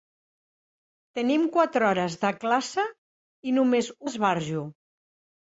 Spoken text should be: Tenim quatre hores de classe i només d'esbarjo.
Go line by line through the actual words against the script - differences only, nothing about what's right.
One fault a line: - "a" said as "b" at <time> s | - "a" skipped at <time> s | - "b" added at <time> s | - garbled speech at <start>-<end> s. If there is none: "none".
none